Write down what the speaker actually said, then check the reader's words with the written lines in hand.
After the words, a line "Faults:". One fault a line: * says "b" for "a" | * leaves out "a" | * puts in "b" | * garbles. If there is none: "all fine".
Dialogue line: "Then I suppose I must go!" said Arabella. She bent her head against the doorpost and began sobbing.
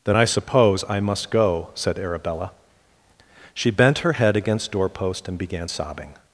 "Then I suppose I must go!" said Arabella. She bent her head against doorpost and began sobbing.
Faults:
* leaves out "the"